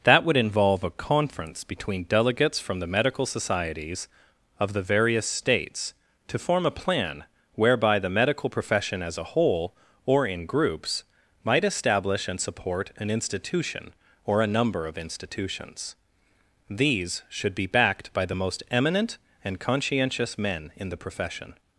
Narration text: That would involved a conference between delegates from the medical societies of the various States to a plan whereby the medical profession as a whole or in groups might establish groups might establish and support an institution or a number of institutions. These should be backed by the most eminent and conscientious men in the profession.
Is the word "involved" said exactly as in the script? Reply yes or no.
no